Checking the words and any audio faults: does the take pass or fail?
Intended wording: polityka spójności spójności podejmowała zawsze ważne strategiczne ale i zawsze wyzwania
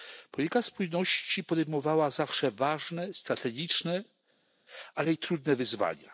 fail